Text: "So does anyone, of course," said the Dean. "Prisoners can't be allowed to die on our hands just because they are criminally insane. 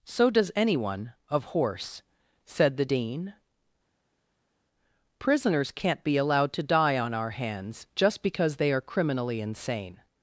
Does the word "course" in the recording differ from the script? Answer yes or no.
yes